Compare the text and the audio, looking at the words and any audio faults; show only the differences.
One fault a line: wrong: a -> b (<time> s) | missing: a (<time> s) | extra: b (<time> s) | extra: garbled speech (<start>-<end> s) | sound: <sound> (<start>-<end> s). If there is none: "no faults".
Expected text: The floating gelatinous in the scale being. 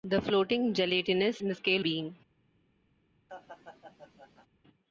sound: laugh (3.3-4.5 s)